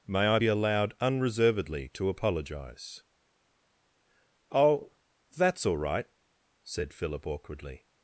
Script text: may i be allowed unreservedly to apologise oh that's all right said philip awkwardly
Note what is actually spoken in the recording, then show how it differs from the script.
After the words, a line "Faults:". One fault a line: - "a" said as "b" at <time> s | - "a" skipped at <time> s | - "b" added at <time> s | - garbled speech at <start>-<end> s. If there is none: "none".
may i be allowed unreservedly to apologise oh that's all right said philip awkwardly
Faults:
none